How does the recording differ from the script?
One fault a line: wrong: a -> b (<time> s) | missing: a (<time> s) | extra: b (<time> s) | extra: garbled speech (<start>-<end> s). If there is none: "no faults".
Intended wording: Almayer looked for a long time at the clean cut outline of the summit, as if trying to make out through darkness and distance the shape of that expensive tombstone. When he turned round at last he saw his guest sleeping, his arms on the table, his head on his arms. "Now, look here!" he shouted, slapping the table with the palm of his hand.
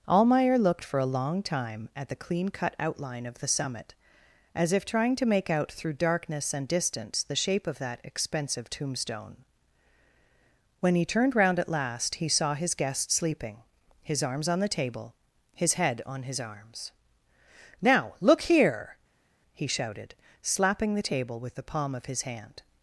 no faults